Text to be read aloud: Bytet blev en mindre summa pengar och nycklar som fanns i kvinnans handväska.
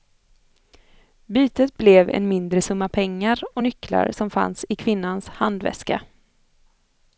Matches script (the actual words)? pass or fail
pass